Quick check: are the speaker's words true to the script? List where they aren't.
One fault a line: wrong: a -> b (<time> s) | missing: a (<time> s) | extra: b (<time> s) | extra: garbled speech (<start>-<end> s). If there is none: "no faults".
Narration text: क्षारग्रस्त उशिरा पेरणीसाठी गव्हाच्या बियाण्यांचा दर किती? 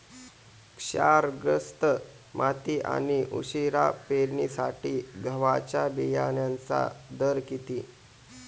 extra: माती आणि (2.3 s)